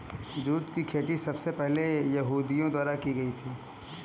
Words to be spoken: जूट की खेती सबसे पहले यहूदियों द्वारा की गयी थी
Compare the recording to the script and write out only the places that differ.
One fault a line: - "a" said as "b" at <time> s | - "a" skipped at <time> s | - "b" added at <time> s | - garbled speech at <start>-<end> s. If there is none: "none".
none